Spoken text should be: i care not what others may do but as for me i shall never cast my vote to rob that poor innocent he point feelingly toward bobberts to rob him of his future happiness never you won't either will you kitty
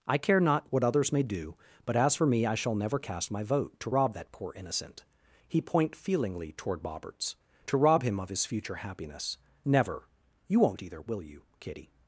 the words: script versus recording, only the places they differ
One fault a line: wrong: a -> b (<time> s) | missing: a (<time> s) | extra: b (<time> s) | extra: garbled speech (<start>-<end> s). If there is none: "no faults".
no faults